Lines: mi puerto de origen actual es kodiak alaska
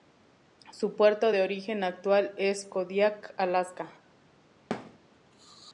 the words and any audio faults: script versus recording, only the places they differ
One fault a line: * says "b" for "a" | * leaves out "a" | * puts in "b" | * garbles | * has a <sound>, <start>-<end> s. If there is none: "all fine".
* says "su" for "mi"
* has a thud, 4.7-5.0 s